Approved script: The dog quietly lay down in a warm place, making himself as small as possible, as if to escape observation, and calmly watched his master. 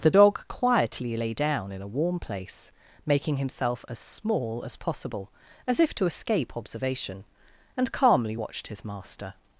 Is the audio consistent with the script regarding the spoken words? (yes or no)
yes